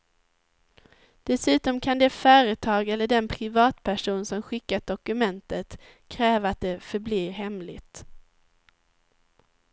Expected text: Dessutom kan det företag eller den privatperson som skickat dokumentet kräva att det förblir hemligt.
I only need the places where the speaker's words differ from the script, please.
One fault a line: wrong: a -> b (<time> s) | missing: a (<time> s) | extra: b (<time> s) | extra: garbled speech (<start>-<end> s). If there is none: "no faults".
no faults